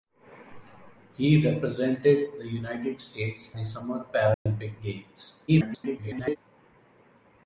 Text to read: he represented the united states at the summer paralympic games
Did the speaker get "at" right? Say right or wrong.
wrong